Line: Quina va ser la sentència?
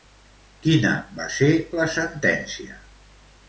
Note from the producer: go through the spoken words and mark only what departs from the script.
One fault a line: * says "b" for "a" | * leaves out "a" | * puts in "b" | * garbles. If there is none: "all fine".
all fine